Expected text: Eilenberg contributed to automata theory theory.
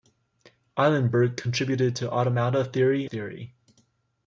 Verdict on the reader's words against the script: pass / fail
pass